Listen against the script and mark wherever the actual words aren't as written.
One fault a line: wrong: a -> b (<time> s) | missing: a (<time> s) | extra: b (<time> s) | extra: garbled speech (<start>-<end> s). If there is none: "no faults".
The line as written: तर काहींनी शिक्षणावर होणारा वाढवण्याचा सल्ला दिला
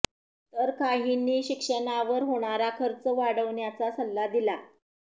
extra: खर्च (2.8 s)